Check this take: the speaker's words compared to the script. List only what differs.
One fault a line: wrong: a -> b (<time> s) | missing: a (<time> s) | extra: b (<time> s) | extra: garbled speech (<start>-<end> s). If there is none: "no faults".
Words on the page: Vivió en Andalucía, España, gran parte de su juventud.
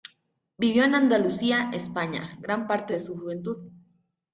no faults